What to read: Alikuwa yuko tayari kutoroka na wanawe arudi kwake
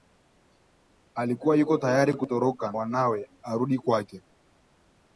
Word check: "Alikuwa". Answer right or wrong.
right